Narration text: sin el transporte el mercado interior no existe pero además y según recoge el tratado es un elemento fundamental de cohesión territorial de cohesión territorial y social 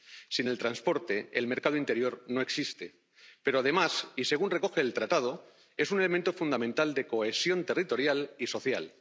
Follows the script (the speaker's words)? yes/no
no